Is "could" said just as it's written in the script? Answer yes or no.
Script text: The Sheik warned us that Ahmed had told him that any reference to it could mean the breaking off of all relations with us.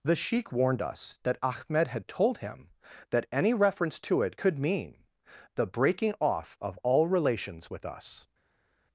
yes